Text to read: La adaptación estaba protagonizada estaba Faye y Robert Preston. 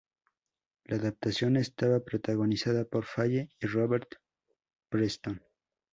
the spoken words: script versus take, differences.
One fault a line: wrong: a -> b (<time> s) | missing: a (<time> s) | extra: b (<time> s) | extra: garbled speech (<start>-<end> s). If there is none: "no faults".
wrong: estaba -> por (2.9 s)